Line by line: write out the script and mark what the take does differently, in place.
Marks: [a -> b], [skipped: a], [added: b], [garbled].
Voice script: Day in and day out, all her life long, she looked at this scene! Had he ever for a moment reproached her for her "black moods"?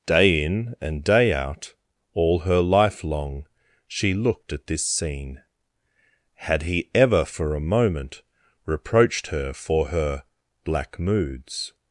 Day in and day out, all her life long, she looked at this scene! Had he ever for a moment reproached her for her "black moods"?